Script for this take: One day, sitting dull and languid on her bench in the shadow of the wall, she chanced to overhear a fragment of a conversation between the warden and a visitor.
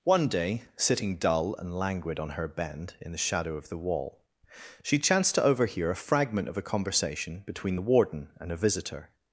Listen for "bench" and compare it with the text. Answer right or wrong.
wrong